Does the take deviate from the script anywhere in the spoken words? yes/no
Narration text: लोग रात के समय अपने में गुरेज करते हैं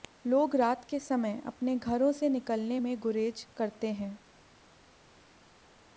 yes